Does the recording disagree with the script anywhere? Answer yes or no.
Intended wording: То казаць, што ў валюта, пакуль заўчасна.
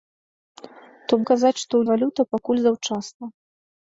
no